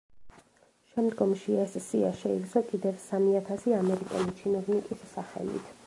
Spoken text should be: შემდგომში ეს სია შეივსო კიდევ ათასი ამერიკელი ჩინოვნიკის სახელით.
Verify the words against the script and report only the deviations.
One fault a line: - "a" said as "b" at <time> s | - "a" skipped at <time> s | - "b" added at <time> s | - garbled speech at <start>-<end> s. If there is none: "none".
- "სამი" added at 3.1 s